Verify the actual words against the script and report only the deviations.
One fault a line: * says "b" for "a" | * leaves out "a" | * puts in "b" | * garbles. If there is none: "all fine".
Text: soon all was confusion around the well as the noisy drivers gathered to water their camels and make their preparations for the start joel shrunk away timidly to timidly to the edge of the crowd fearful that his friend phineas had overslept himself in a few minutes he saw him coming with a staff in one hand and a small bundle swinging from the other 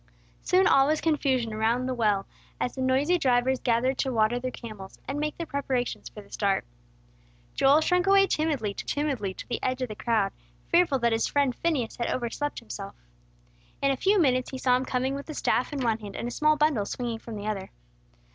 all fine